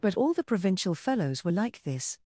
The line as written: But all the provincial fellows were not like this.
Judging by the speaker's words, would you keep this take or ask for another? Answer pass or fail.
fail